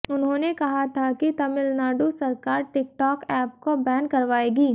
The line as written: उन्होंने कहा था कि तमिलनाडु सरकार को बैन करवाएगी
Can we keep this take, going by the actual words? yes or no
no